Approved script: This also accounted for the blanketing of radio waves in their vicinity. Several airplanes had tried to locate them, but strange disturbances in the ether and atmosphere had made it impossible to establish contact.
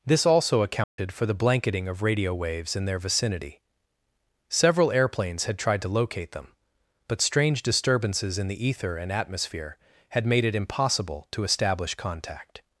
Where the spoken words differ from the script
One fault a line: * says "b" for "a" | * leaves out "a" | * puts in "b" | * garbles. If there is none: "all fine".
all fine